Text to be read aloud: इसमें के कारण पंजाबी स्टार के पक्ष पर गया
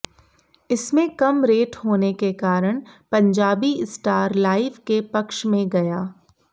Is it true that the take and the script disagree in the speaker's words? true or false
true